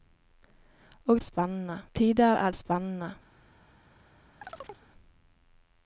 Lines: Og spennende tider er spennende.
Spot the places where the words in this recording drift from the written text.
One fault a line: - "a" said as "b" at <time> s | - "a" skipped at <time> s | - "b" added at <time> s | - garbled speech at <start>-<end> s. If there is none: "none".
none